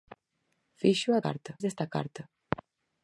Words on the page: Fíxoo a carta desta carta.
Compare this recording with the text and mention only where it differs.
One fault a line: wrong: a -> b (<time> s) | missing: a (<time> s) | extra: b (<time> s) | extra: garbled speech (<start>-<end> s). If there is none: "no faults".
no faults